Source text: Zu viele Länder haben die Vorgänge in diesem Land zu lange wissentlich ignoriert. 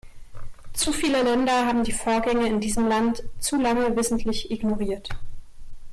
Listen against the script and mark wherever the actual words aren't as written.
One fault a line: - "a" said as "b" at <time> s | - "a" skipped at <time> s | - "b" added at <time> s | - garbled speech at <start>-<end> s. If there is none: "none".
none